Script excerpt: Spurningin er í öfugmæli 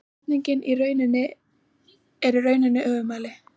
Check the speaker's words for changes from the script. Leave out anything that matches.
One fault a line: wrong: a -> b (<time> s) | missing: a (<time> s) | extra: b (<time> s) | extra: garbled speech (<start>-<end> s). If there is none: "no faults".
extra: rauninni (2.5 s)